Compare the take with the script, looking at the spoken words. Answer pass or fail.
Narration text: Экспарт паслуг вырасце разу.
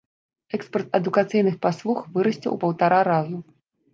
fail